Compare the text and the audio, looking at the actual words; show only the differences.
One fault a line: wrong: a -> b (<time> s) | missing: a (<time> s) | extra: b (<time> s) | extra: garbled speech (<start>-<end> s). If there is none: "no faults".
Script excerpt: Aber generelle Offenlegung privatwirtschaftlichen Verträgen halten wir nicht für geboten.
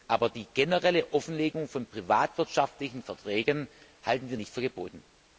extra: die (0.3 s)
extra: von (1.7 s)